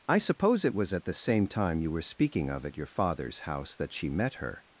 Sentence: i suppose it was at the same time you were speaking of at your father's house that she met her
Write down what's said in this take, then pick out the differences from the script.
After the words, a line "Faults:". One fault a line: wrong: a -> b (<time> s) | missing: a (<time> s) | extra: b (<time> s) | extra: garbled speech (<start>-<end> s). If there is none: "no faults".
i suppose it was at the same time you were speaking of at your father's house that she met her
Faults:
no faults